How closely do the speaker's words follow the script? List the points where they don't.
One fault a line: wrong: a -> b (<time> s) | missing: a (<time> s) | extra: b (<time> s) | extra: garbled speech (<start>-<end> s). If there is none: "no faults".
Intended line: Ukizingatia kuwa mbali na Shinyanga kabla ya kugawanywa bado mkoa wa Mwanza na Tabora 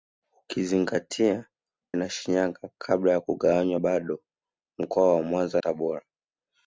missing: kuwa mbali (1.5 s)
missing: na (5.6 s)